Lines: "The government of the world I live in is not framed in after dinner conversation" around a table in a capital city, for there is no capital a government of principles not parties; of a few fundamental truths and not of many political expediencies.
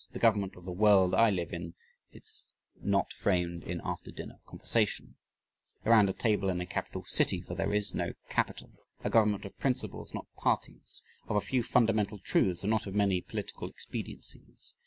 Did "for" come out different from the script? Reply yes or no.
no